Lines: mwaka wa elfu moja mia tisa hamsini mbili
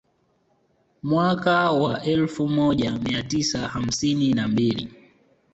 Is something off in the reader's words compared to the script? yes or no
yes